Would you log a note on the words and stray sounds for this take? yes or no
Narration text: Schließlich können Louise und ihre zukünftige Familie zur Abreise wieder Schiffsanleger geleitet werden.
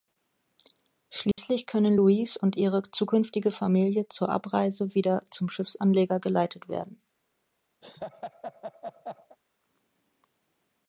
yes